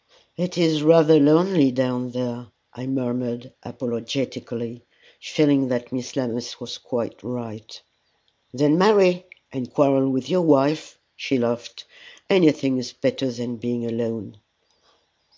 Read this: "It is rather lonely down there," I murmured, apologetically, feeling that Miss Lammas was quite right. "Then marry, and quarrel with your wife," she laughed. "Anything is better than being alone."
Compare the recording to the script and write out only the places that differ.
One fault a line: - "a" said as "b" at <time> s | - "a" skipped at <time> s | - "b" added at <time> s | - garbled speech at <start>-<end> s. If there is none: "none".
none